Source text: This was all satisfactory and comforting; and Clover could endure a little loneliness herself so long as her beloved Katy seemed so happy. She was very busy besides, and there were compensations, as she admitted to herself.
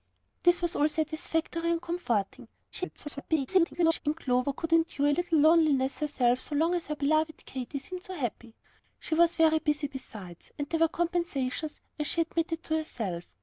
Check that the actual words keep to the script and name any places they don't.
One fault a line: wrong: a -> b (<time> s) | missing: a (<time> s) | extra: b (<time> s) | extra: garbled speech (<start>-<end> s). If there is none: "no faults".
extra: garbled speech (2.7-4.0 s)